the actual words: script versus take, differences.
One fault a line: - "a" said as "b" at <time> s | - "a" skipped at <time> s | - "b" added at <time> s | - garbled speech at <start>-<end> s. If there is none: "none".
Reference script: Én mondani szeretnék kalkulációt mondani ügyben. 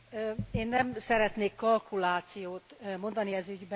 - "mondani" said as "nem" at 0.7 s
- "ez" added at 3.3 s